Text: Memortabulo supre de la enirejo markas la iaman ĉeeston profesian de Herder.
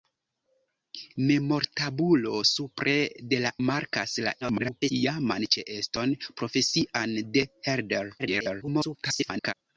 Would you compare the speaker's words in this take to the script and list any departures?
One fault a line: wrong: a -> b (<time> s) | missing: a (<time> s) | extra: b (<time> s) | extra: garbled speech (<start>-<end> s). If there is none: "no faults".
missing: enirejo (3.5 s)
extra: garbled speech (4.4-4.9 s)
extra: garbled speech (8.2-9.5 s)